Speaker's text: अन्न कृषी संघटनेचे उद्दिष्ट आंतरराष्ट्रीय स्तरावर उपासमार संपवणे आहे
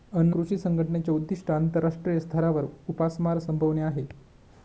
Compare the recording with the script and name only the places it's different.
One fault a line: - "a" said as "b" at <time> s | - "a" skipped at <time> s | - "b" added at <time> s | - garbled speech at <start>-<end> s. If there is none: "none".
none